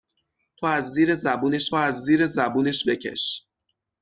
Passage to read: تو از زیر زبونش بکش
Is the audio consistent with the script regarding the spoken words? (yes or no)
no